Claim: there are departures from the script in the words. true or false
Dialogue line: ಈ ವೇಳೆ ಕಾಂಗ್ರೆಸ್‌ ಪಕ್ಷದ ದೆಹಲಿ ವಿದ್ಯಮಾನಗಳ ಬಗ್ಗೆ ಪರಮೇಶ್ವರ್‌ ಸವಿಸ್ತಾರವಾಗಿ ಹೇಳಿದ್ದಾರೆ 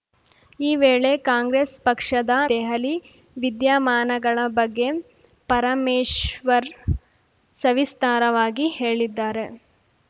false